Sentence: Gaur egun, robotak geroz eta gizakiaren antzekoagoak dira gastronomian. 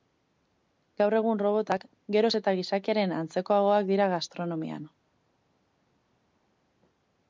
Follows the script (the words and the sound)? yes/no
yes